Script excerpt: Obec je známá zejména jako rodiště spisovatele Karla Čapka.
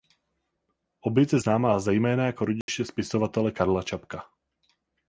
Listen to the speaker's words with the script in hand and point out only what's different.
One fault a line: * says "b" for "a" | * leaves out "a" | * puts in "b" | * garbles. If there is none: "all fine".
all fine